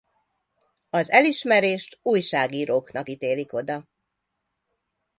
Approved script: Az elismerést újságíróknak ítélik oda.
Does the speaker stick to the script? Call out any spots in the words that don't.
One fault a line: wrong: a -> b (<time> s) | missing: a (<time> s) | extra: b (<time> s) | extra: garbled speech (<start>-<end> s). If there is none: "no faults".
no faults